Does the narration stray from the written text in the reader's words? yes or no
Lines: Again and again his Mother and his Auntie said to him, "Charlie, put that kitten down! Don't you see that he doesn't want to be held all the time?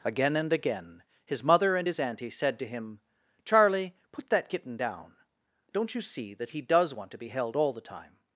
yes